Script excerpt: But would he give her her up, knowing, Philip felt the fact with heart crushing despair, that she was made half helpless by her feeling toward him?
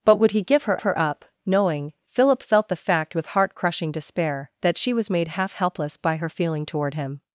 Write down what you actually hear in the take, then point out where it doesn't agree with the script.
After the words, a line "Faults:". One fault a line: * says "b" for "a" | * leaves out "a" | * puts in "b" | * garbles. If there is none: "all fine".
But would he give her her up, knowing, Philip felt the fact with heart crushing despair, that she was made half helpless by her feeling toward him?
Faults:
all fine